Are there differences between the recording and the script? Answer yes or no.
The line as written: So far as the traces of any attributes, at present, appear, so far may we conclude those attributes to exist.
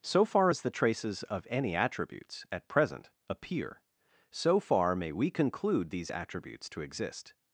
yes